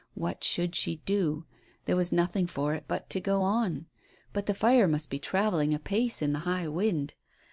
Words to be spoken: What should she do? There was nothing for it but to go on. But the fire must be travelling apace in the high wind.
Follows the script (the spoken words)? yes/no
yes